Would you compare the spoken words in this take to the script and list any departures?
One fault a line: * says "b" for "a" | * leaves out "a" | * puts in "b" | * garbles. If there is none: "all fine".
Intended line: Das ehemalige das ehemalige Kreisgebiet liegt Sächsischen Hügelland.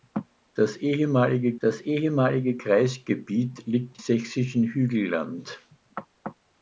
all fine